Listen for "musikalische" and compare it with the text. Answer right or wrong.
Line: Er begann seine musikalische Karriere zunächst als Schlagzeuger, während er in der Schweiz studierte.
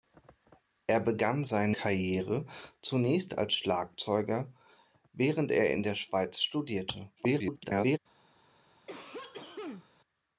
wrong